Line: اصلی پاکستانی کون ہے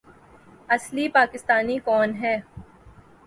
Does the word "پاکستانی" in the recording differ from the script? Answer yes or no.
no